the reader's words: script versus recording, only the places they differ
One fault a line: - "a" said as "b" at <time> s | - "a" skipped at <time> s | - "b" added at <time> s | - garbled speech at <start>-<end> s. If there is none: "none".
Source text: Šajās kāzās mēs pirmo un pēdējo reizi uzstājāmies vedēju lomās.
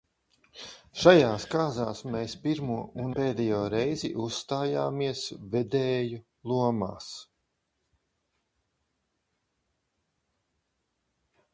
none